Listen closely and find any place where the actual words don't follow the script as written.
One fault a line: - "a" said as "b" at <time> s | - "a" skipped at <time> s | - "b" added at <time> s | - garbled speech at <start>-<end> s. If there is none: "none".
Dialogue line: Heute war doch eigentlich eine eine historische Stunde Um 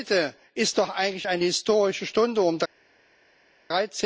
- "war" said as "ist" at 0.6 s
- "eine" skipped at 1.4 s